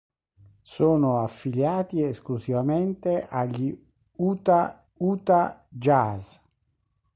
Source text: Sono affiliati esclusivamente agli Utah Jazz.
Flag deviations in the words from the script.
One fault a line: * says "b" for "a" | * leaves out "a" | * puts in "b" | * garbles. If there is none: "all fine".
* puts in "Utah"